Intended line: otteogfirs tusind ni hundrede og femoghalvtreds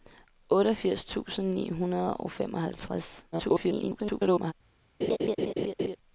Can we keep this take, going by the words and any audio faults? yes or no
no